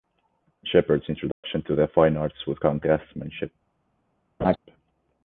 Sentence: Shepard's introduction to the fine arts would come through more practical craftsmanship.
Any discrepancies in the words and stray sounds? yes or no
yes